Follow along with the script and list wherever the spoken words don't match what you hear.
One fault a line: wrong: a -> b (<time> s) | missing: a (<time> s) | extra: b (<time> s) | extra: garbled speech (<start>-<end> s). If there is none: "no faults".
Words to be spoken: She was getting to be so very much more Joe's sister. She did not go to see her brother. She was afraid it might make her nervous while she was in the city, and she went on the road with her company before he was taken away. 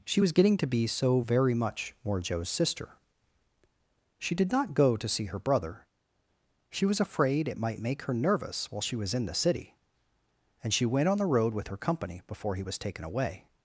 no faults